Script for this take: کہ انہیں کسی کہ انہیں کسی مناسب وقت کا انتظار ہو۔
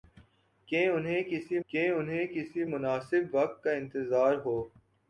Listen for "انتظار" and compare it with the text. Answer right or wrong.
right